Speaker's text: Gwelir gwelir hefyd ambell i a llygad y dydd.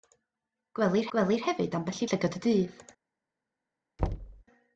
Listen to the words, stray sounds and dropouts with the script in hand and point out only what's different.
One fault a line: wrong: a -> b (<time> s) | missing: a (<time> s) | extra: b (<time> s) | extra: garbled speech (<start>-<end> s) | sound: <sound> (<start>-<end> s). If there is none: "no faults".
sound: thud (4.0-4.4 s)